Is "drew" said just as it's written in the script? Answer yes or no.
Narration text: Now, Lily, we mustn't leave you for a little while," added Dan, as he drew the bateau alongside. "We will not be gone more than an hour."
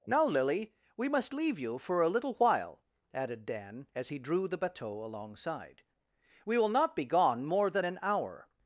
yes